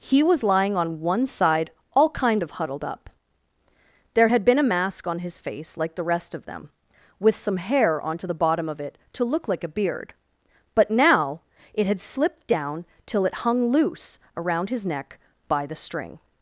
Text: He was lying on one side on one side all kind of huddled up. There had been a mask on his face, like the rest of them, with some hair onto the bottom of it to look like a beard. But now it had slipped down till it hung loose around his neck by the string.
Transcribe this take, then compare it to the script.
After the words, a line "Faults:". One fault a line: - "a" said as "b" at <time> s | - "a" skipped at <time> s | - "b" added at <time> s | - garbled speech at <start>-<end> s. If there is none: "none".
He was lying on one side all kind of huddled up. There had been a mask on his face, like the rest of them, with some hair onto the bottom of it to look like a beard. But now it had slipped down till it hung loose around his neck by the string.
Faults:
- "on one side" skipped at 1.7 s